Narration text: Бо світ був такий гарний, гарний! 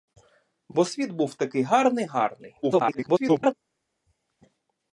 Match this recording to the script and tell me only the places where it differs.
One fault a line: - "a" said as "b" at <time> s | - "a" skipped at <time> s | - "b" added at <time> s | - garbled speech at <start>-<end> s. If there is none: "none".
- garbled speech at 2.6-3.5 s